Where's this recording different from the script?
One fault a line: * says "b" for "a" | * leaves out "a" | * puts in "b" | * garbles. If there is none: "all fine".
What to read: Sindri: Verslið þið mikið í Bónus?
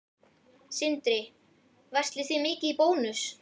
all fine